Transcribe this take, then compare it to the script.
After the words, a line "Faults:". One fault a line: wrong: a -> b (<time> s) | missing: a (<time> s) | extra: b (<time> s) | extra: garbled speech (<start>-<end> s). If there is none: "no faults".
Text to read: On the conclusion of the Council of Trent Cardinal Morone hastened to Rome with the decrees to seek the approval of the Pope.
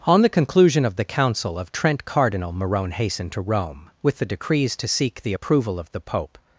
On the conclusion of the Council of Trent Cardinal Morone hastened to Rome with the decrees to seek the approval of the Pope.
Faults:
no faults